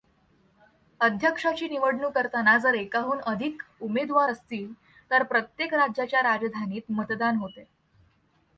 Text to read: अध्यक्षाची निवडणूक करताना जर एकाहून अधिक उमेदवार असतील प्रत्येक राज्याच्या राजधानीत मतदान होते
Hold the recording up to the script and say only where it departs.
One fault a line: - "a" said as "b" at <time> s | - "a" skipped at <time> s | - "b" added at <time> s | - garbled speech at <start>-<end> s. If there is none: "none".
- "तर" added at 5.1 s